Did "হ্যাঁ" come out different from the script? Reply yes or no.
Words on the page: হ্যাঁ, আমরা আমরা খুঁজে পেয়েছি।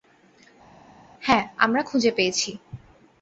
no